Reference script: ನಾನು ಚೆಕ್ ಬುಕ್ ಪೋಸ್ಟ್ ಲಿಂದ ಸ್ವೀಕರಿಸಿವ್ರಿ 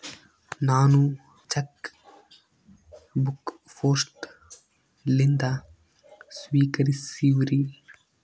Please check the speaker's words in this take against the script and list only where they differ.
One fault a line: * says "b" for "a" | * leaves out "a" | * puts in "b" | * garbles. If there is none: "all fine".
all fine